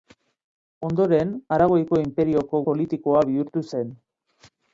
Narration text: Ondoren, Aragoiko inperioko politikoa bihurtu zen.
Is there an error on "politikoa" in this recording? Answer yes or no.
no